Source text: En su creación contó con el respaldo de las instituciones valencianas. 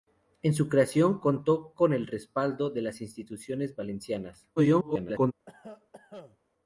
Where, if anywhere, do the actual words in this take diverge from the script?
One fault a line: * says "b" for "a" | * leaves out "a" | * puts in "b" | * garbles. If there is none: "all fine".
* garbles